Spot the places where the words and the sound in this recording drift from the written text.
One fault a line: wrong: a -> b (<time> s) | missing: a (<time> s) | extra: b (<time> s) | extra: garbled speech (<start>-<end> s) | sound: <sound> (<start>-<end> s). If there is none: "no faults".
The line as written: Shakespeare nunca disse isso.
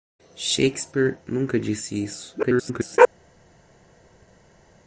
extra: garbled speech (2.4-3.0 s)